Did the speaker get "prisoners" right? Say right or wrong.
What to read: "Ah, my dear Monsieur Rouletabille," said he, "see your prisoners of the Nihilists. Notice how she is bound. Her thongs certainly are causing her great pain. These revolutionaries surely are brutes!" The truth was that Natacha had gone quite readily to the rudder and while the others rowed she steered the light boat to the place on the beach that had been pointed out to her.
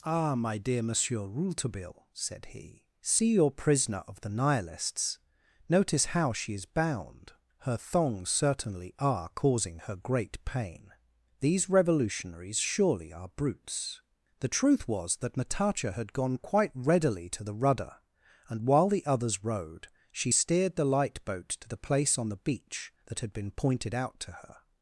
wrong